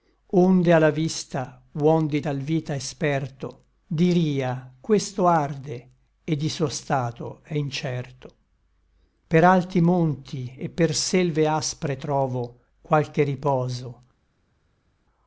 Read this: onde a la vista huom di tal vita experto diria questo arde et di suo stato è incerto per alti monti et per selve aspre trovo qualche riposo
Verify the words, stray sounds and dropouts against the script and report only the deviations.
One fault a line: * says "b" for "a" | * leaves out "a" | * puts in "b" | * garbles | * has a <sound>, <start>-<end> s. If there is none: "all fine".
all fine